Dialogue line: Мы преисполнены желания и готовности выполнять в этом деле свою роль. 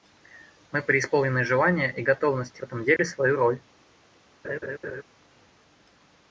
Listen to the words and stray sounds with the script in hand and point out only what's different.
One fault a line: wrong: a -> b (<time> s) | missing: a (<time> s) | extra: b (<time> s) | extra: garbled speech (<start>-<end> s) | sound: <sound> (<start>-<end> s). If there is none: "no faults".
missing: выполнять (2.6 s)
sound: dropout (3.0-3.0 s)
sound: laugh (4.4-5.0 s)